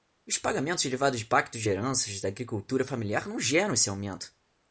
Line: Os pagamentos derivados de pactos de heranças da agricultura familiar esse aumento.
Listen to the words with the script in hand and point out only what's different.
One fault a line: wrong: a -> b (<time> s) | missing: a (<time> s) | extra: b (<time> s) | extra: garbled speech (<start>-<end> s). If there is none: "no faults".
extra: não geram (3.3 s)